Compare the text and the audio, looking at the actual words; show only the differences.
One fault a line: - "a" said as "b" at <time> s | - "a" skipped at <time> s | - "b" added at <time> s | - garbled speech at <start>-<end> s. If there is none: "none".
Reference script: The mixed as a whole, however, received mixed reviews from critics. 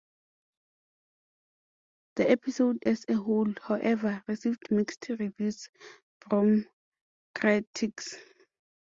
- "mixed" said as "episode" at 2.3 s